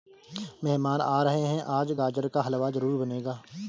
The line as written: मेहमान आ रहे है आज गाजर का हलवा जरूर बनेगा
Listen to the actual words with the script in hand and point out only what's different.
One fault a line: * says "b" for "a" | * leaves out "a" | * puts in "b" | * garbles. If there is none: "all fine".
all fine